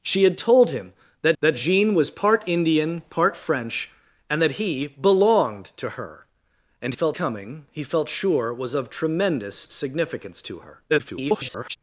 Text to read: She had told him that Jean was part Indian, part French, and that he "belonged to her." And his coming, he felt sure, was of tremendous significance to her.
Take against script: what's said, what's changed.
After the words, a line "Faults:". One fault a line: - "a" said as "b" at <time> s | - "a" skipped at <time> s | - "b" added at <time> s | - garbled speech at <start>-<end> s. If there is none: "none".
She had told him that that Jean was part Indian, part French, and that he "belonged to her." And felt coming, he felt sure, was of tremendous significance to her. [garbled]
Faults:
- "that" added at 1.4 s
- "his" said as "felt" at 6.9 s
- garbled speech at 10.9-11.8 s